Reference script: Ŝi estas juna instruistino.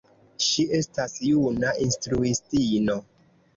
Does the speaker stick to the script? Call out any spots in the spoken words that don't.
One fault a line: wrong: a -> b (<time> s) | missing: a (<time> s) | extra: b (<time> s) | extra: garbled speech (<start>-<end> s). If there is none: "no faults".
no faults